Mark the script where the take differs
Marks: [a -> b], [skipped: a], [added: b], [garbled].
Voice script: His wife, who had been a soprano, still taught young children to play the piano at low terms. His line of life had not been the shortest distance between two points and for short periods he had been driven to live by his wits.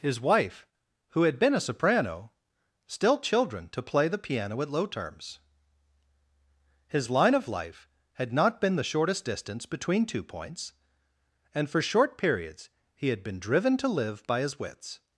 His wife, who had been a soprano, still [skipped: taught young] children to play the piano at low terms. His line of life had not been the shortest distance between two points and for short periods he had been driven to live by his wits.